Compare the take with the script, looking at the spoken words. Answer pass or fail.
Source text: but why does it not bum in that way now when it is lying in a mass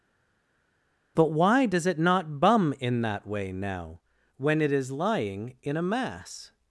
pass